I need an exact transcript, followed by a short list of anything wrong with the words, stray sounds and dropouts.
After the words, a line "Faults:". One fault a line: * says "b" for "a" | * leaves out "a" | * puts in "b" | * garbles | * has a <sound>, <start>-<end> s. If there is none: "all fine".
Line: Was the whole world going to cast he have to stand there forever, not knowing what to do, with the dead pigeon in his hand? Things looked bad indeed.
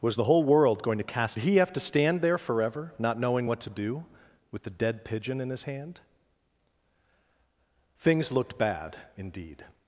Was the whole world going to cast he have to stand there forever, not knowing what to do, with the dead pigeon in his hand? Things looked bad indeed.
Faults:
all fine